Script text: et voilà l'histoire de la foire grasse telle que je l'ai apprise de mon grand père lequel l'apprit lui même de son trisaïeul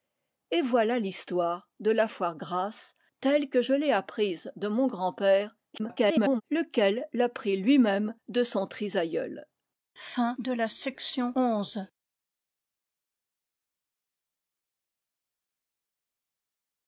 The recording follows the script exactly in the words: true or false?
false